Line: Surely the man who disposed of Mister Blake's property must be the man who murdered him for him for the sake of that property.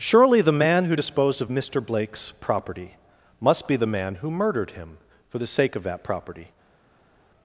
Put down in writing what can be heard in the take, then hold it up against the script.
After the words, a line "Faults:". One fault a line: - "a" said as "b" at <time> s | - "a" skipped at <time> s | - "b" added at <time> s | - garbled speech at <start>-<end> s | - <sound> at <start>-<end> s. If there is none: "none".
Surely the man who disposed of Mister Blake's property must be the man who murdered him for the sake of that property.
Faults:
- "him for" skipped at 5.4 s